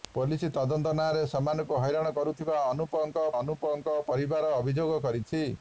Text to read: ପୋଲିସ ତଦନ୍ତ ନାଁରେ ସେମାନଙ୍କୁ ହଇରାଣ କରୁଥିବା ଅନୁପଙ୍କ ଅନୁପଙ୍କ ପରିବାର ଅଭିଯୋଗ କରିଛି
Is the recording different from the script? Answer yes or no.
no